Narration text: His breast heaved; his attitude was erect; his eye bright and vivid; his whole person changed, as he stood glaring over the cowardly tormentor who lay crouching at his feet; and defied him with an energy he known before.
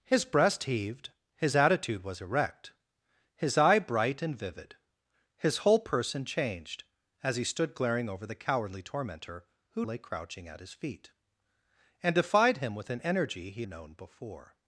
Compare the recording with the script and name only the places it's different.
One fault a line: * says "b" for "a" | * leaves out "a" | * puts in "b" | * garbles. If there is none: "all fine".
all fine